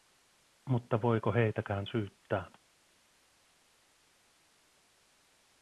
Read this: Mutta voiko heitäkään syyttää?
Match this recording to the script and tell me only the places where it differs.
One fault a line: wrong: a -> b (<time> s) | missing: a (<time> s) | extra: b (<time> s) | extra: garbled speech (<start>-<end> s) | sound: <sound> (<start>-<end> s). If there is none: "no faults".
no faults